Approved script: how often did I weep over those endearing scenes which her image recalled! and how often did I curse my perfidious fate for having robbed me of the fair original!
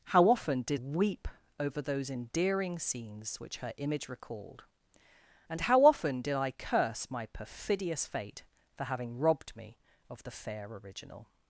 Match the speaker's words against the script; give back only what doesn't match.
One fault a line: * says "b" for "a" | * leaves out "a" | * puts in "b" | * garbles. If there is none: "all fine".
* leaves out "I"